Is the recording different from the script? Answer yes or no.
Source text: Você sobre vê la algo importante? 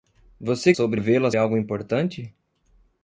no